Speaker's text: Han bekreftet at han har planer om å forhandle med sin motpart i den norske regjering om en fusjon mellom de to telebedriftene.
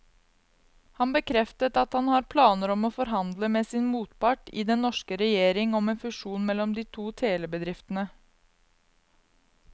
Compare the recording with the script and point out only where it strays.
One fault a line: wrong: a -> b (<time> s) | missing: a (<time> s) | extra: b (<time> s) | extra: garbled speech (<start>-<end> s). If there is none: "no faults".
no faults